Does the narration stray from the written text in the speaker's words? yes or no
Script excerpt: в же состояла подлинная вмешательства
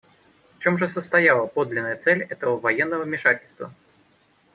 yes